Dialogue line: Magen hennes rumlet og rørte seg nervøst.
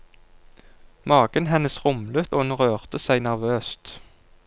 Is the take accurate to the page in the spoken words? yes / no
no